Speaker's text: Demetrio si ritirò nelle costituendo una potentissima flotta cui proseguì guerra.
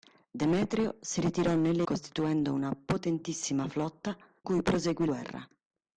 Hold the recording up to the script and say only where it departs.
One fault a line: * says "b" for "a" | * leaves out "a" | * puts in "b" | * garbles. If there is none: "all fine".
all fine